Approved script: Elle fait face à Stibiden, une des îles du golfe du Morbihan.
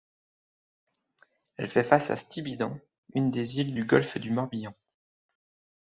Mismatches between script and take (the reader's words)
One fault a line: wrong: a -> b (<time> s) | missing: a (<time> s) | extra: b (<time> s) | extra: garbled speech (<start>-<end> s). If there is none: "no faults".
no faults